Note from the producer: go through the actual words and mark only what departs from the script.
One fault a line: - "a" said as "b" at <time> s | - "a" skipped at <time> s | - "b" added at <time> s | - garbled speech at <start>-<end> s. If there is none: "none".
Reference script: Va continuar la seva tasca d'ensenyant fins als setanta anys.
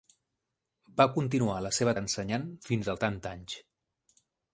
- "tasca" skipped at 1.9 s
- "als" skipped at 2.9 s